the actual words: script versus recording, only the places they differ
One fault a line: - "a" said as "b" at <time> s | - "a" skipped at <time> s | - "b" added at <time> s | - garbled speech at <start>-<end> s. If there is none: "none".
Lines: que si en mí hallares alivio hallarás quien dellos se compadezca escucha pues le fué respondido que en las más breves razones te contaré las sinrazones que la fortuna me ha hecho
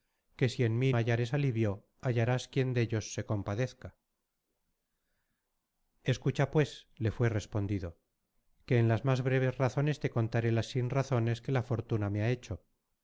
none